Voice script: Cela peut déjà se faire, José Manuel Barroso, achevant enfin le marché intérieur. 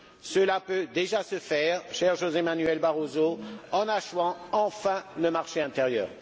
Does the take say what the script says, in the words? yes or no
no